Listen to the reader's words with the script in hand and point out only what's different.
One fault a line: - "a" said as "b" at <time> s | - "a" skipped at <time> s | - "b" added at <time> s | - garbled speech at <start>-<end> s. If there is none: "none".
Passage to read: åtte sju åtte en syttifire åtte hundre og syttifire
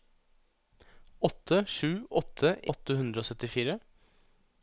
- "en syttifire" skipped at 2.5 s